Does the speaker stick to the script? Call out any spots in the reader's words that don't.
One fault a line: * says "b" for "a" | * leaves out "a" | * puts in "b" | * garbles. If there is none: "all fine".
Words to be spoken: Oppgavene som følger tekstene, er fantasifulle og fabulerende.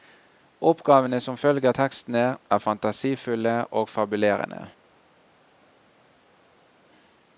all fine